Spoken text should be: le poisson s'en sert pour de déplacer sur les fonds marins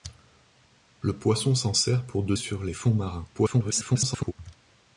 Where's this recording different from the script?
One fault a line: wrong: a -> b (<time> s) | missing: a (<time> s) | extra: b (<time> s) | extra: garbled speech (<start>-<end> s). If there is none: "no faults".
missing: déplacer (2.4 s)
extra: garbled speech (3.3-4.3 s)